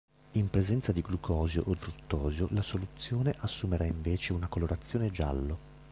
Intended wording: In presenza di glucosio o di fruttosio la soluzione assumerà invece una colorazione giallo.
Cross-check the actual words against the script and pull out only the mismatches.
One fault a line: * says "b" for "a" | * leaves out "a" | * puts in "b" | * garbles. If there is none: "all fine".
* leaves out "di"